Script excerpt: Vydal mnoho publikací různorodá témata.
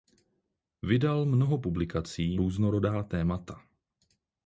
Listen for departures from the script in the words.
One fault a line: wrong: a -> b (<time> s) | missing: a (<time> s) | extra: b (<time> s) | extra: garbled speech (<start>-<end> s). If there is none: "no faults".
no faults